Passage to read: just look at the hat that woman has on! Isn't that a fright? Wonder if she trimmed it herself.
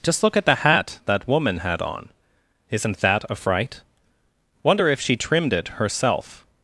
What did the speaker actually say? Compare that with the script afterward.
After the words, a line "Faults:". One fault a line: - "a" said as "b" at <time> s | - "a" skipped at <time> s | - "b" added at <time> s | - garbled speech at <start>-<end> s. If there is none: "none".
just look at the hat that woman had on! Isn't that a fright? Wonder if she trimmed it herself.
Faults:
- "has" said as "had" at 1.6 s